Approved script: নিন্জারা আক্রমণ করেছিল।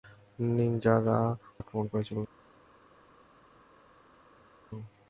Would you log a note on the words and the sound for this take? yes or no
no